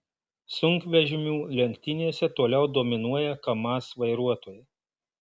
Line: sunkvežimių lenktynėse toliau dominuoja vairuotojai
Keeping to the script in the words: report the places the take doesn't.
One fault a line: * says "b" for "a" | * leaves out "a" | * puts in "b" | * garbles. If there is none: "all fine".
* puts in "kamaz"